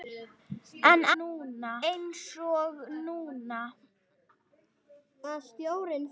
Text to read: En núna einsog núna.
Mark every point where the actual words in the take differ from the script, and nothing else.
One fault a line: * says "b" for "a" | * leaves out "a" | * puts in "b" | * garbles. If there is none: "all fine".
all fine